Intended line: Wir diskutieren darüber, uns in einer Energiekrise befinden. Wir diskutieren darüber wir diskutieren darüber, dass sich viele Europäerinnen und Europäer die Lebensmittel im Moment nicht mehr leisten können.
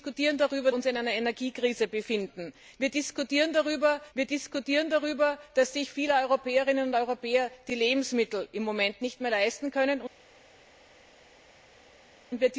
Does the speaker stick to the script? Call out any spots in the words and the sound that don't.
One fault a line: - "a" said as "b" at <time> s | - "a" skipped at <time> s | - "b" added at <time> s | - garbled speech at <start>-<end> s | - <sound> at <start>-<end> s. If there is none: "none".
none